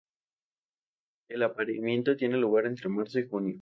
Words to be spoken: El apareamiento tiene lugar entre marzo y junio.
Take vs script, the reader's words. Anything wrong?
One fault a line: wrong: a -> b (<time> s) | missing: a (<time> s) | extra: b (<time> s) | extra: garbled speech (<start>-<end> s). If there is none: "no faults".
no faults